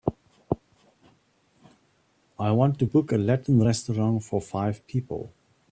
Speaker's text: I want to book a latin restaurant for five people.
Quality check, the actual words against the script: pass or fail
pass